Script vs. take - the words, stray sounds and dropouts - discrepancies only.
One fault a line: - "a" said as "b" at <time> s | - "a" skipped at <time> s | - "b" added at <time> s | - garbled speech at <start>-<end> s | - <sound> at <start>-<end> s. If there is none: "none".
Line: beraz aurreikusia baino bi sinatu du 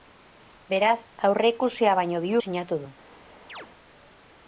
- chirp at 3.5-3.7 s